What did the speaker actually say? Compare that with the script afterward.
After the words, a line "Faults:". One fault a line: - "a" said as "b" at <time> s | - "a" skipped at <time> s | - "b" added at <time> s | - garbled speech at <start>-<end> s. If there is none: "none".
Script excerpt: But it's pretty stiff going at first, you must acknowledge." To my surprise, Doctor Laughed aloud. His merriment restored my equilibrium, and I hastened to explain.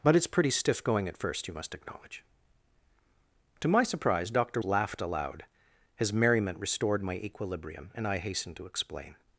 But it's pretty stiff going at first, you must acknowledge." To my surprise, Doctor Laughed aloud. His merriment restored my equilibrium, and I hastened to explain.
Faults:
none